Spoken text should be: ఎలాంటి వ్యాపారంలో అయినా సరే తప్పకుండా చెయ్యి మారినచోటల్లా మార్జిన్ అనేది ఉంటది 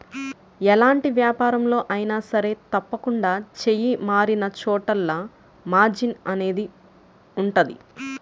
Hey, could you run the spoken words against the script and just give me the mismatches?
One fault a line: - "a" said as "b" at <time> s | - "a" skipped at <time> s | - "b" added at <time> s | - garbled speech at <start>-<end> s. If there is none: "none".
none